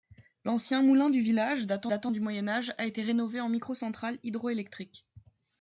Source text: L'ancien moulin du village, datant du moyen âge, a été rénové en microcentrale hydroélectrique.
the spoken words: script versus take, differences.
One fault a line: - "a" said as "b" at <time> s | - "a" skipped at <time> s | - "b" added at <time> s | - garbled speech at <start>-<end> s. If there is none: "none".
- "datant" added at 1.9 s